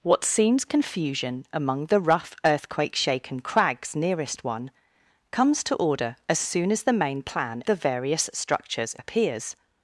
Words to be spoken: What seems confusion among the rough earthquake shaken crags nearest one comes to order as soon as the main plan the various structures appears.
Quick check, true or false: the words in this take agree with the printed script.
true